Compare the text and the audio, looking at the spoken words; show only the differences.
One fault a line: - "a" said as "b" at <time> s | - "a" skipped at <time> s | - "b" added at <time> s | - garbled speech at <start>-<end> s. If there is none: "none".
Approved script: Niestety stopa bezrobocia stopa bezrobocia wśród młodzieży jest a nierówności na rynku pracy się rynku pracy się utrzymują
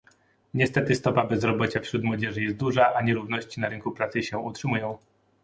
- "stopa bezrobocia" skipped at 1.8 s
- "duża" added at 2.5 s
- "rynku pracy się" skipped at 4.4 s